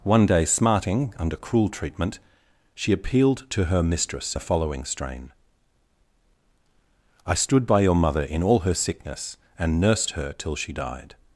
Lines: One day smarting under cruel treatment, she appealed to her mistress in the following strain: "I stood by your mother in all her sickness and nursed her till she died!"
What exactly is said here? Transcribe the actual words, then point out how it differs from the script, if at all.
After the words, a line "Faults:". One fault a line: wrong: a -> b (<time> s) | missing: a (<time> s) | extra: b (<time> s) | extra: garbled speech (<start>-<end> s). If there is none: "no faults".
One day smarting under cruel treatment, she appealed to her mistress the following strain: "I stood by your mother in all her sickness and nursed her till she died!"
Faults:
missing: in (4.3 s)